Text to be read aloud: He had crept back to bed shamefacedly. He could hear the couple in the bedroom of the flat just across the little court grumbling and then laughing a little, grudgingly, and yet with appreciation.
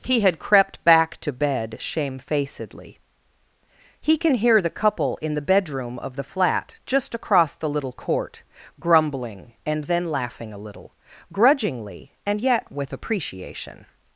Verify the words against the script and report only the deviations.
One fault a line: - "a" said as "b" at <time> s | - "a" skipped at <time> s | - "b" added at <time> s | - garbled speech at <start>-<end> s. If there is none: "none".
- "could" said as "can" at 4.2 s